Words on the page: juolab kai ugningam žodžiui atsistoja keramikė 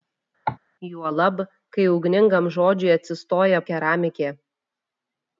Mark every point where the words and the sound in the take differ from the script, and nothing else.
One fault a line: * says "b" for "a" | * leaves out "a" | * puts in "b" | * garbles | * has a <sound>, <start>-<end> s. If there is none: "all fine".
* has a cough, 0.5-0.6 s